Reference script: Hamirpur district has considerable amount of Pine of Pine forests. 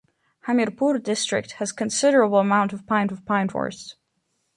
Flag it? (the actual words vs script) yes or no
no